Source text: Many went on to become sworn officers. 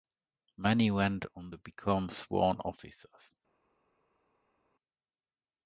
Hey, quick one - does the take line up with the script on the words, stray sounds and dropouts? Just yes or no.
yes